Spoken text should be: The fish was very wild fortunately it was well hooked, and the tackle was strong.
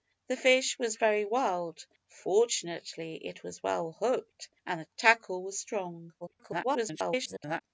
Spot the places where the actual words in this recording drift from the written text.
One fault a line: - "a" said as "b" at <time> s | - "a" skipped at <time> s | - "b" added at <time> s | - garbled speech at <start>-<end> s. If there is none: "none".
- garbled speech at 6.2-7.6 s